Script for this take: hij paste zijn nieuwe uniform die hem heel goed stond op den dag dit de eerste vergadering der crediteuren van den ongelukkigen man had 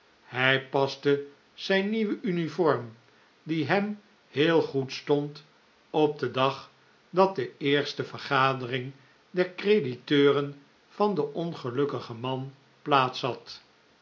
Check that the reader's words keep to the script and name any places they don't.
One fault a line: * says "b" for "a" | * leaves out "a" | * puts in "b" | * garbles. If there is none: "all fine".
* says "dat" for "dit"
* puts in "plaats"